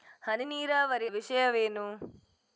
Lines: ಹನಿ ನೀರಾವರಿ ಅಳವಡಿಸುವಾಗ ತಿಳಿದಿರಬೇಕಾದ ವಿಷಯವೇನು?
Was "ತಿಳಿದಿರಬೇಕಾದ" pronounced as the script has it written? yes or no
no